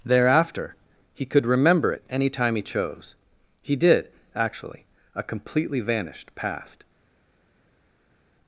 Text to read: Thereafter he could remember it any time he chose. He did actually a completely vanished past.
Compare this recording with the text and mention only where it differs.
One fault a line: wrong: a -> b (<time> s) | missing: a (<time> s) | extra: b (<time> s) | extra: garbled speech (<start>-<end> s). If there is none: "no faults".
no faults